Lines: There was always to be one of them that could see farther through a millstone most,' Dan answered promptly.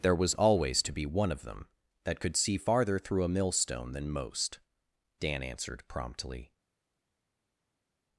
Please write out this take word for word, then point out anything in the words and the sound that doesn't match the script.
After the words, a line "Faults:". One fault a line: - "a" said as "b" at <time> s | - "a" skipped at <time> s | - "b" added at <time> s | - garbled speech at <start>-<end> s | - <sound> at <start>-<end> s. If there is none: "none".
There was always to be one of them that could see farther through a millstone than most,' Dan answered promptly.
Faults:
- "than" added at 3.9 s